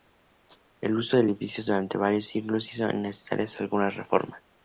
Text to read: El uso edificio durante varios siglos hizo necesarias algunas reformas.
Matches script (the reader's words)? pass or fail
fail